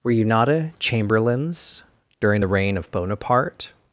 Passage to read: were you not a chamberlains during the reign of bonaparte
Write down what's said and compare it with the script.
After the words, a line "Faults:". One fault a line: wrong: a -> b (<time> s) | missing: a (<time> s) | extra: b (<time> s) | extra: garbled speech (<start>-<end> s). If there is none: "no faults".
were you not a chamberlains during the reign of bonaparte
Faults:
no faults